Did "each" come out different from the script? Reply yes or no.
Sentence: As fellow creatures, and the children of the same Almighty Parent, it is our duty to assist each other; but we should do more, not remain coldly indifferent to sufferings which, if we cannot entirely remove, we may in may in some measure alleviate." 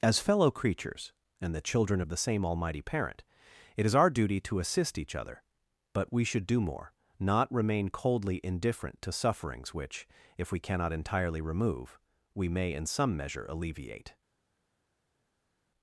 no